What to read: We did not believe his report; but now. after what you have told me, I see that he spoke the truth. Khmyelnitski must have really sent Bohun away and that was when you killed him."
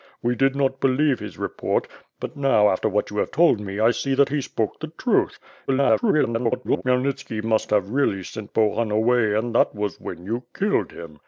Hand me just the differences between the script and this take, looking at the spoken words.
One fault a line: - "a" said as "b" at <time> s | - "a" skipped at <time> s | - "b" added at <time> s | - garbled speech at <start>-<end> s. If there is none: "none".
- garbled speech at 5.7-6.8 s